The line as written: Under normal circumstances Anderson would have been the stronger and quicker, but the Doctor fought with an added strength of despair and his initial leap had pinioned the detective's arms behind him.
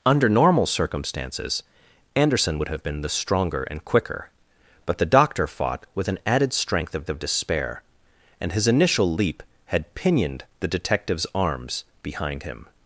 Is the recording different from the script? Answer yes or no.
yes